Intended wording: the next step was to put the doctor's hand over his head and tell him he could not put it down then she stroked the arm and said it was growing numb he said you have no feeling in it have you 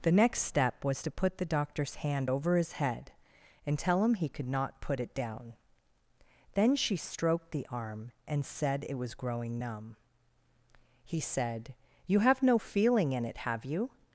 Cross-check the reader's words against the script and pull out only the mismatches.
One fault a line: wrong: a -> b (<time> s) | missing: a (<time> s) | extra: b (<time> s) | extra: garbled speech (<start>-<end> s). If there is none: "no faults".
no faults